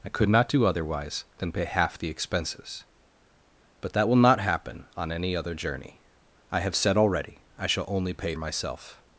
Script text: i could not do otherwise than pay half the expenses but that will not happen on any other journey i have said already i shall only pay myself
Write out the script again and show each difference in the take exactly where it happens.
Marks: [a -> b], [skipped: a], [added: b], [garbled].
i could not do otherwise than pay half the expenses but that will not happen on any other journey i have said already i shall only pay myself